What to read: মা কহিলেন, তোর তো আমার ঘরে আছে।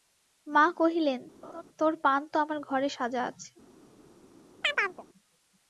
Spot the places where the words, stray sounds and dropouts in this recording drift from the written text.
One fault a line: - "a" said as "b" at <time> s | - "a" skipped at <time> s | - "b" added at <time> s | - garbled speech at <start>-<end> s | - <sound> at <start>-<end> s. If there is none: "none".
- laugh at 1.4-1.6 s
- "পান" added at 2.0 s
- "সাজা" added at 2.9 s
- chirp at 4.6-5.0 s